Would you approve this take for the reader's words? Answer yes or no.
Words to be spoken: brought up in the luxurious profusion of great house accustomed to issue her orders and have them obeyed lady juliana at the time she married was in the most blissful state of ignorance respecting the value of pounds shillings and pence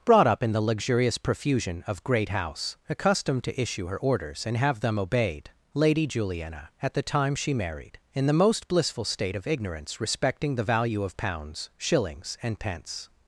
no